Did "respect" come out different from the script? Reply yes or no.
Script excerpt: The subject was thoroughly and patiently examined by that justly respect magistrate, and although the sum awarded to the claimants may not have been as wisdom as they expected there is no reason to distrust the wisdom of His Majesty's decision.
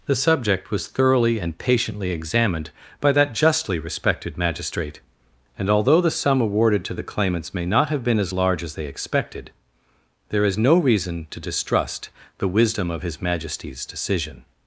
yes